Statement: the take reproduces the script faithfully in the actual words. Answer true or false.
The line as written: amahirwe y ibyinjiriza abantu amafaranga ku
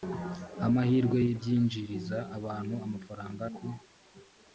true